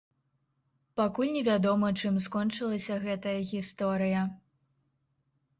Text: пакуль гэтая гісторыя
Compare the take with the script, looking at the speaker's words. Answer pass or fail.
fail